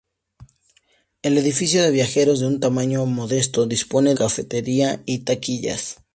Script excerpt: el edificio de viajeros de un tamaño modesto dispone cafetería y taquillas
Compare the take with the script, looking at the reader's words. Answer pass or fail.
pass